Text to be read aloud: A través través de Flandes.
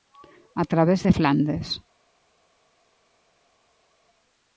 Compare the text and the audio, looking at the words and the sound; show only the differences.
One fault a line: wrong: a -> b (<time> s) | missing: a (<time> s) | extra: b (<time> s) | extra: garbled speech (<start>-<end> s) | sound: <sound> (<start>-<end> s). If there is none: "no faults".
missing: través (1.1 s)